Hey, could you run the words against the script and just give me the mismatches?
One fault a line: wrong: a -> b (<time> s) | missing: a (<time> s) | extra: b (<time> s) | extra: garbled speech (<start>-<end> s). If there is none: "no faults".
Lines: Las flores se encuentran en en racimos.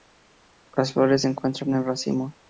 missing: en (1.8 s)